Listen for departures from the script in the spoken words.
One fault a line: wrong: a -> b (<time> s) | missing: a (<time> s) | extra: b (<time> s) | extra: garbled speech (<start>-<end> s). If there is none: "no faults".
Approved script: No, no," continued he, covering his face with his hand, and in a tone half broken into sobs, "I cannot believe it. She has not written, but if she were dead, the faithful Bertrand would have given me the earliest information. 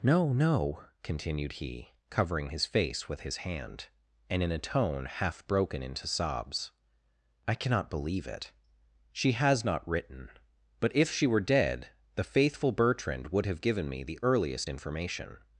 no faults